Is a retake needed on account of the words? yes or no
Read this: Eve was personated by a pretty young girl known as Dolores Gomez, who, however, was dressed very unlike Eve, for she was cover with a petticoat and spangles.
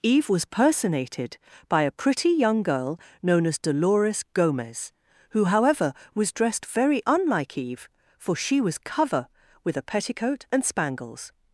no